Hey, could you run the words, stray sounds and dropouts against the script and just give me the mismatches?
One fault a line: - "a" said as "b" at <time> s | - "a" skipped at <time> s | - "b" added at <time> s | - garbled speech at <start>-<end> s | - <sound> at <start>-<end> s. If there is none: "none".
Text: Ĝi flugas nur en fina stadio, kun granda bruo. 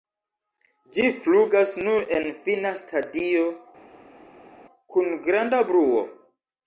none